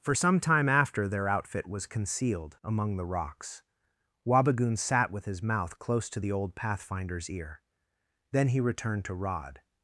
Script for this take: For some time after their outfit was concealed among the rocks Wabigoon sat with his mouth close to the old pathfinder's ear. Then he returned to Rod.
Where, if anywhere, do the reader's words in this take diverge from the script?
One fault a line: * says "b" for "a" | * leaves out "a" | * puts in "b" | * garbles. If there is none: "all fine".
all fine